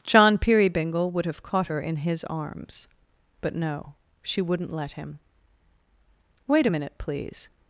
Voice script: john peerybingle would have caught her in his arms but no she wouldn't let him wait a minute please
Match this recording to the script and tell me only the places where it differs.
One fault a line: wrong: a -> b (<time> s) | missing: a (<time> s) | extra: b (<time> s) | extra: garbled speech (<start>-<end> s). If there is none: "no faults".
no faults